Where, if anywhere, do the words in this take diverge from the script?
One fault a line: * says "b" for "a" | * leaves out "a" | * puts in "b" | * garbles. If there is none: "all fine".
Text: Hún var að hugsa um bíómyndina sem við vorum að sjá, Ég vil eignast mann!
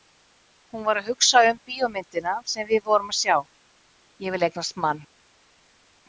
all fine